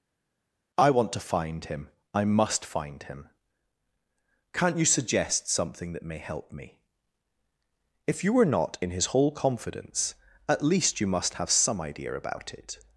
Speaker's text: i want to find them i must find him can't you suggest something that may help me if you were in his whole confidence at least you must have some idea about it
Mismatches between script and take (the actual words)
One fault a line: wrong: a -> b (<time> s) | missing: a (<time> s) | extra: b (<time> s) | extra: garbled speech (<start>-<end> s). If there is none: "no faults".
wrong: them -> him (1.6 s)
extra: not (8.4 s)